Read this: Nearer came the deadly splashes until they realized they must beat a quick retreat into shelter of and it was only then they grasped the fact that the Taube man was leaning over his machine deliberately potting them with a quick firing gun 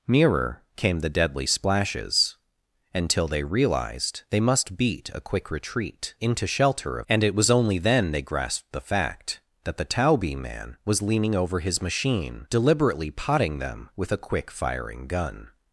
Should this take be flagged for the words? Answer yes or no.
no